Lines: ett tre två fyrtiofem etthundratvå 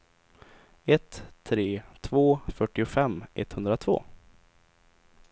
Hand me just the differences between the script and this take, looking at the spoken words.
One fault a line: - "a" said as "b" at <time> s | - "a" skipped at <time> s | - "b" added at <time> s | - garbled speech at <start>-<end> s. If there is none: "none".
none